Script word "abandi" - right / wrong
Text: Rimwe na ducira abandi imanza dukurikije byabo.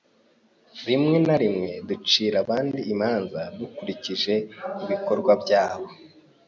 right